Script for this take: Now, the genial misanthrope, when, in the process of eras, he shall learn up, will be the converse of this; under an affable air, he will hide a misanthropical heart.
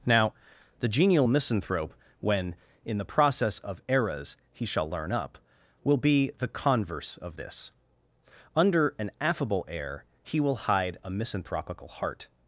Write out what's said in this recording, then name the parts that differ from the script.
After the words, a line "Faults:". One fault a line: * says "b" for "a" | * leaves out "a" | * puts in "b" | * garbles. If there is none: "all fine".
Now, the genial misanthrope, when, in the process of eras, he shall learn up, will be the converse of this; under an affable air, he will hide a misanthropical heart.
Faults:
all fine